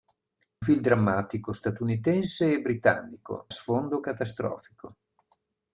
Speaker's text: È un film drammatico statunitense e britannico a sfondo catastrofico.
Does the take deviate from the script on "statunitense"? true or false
false